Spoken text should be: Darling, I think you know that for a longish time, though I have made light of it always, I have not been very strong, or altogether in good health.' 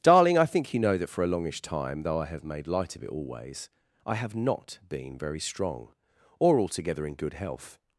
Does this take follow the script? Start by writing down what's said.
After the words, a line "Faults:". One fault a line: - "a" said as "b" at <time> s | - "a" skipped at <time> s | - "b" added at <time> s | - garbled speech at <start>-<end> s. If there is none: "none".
Darling, I think you know that for a longish time, though I have made light of it always, I have not been very strong, or altogether in good health.'
Faults:
none